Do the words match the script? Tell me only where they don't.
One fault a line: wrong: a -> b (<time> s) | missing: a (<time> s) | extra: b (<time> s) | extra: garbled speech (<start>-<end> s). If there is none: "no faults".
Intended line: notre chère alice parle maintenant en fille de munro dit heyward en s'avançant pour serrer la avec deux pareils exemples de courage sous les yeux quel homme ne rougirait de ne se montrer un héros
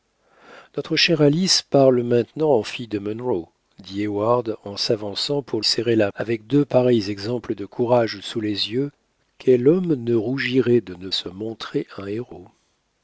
no faults